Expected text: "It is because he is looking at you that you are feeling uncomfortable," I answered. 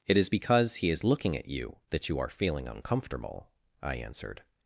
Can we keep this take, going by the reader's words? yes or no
yes